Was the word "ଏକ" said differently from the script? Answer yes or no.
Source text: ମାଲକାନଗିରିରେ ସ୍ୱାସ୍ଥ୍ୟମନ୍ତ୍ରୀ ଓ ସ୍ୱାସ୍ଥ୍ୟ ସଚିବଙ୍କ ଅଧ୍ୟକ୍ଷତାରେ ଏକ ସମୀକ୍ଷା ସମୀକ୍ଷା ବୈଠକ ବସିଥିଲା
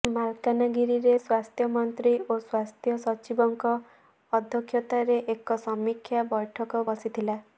no